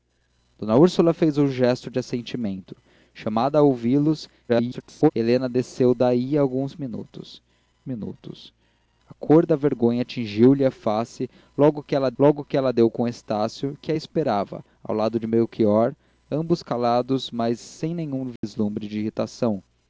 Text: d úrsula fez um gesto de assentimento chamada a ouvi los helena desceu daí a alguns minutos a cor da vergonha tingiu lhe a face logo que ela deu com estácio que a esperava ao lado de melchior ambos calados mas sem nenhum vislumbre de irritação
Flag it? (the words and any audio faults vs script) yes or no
yes